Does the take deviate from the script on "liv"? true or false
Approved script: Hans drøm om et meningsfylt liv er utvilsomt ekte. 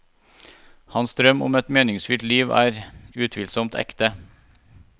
false